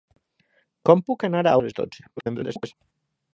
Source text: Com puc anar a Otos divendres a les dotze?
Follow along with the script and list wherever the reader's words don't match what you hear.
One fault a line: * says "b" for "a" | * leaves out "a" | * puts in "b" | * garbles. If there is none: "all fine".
* leaves out "Otos divendres"
* garbles